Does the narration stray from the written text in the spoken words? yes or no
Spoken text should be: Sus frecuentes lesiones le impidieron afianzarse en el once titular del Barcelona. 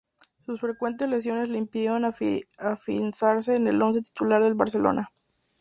no